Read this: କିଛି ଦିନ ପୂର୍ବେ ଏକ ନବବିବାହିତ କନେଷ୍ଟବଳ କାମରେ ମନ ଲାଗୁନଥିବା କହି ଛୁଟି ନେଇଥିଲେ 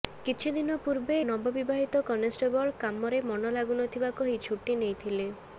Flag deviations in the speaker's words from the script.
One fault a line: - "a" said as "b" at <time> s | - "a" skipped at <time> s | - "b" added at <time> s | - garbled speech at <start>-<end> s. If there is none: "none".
- "ଏକ" skipped at 1.2 s